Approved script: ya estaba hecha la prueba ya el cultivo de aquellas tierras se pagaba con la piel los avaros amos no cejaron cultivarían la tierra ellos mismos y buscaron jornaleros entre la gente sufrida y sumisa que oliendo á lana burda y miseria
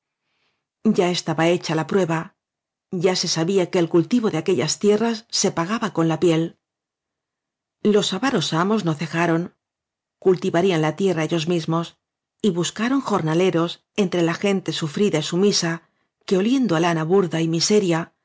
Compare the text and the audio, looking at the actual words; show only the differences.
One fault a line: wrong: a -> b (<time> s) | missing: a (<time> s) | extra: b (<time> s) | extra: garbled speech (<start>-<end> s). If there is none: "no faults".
extra: se sabía que (3.1 s)